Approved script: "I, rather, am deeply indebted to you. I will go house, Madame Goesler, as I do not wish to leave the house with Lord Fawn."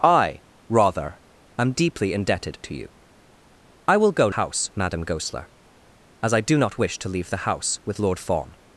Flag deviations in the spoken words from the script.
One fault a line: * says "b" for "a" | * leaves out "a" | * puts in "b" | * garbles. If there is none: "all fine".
all fine